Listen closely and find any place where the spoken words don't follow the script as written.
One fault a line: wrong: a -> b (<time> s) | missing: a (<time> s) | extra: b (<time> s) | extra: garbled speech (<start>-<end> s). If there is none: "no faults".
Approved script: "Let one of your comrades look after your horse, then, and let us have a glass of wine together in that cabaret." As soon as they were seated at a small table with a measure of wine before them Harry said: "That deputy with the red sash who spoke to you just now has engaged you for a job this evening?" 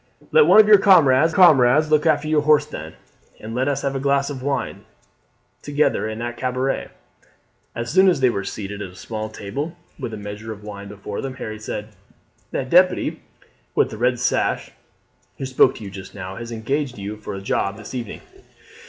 extra: comrades (1.3 s)